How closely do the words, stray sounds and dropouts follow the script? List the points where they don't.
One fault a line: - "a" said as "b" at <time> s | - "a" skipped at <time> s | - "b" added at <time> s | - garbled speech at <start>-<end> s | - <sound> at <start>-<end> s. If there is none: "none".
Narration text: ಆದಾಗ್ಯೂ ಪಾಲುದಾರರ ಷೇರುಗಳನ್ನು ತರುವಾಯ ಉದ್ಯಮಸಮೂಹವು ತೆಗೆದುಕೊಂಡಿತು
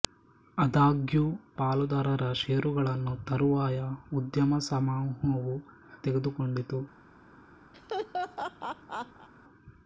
- laugh at 7.7-9.3 s